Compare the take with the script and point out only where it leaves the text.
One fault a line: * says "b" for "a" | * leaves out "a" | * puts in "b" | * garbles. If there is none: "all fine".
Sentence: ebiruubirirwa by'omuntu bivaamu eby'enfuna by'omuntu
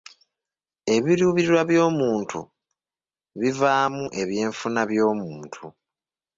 all fine